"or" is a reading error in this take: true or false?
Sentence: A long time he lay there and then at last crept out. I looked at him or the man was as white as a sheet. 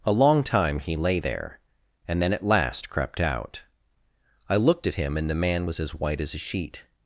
true